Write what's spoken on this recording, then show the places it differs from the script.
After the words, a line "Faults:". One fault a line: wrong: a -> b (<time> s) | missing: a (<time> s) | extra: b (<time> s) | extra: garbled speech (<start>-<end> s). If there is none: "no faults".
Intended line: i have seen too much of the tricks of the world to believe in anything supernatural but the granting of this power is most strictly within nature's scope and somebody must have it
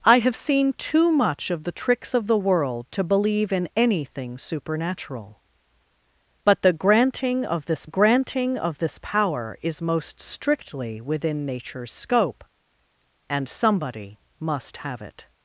i have seen too much of the tricks of the world to believe in anything supernatural but the granting of this granting of this power is most strictly within nature's scope and somebody must have it
Faults:
extra: granting of this (7.8 s)